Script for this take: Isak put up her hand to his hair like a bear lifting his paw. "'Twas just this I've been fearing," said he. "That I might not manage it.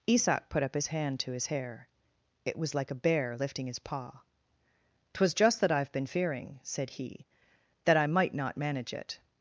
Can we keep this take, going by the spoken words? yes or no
no